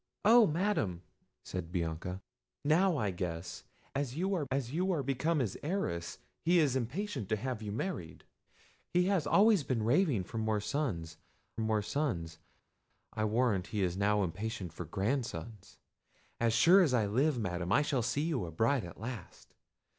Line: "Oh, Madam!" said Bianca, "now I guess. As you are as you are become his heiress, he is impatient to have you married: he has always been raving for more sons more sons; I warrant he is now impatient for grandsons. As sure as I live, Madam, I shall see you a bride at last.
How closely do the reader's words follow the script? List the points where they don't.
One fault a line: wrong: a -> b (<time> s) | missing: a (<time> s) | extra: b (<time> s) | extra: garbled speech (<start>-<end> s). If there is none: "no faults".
no faults